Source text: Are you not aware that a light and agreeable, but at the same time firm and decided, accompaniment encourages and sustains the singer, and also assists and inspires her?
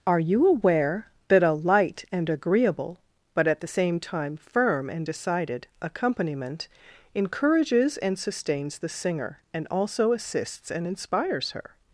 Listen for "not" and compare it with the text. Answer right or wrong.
wrong